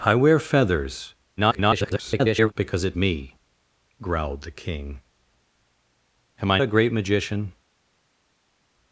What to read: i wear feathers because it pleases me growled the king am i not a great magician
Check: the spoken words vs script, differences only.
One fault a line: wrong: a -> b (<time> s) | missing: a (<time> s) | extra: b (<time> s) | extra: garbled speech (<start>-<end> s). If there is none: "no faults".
extra: garbled speech (1.4-2.5 s)
missing: pleases (3.0 s)
missing: not (6.6 s)